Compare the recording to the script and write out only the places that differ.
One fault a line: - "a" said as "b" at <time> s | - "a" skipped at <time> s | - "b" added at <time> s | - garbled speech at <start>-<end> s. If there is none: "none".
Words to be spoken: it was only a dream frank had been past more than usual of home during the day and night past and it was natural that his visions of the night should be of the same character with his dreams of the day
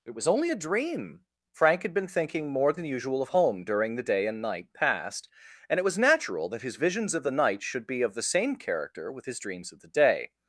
- "past" said as "thinking" at 2.1 s